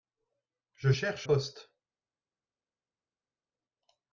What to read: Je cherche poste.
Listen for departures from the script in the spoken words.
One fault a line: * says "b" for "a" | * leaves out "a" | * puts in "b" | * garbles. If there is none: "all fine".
all fine